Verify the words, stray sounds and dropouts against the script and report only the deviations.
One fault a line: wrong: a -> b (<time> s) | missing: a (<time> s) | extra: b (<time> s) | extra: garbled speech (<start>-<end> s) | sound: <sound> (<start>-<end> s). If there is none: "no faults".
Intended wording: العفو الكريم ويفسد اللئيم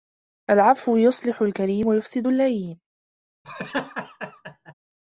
extra: يصلح (1.0 s)
sound: laugh (3.4-4.7 s)